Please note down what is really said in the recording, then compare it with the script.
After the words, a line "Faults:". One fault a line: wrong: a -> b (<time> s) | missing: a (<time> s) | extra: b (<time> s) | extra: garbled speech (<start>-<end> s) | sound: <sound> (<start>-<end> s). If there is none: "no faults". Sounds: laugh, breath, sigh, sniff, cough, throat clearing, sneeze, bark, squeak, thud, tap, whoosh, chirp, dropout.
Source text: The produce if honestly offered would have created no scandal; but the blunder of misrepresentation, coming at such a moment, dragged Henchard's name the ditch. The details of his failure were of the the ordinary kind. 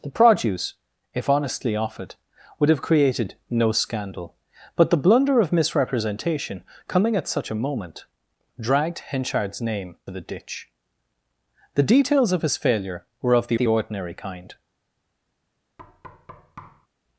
The produce if honestly offered would have created no scandal; but the blunder of misrepresentation, coming at such a moment, dragged Henchard's name the ditch. The details of his failure were of the the ordinary kind.
Faults:
sound: thud (15.8-16.9 s)